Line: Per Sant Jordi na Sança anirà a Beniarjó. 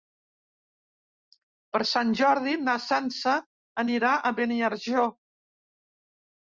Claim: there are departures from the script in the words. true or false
false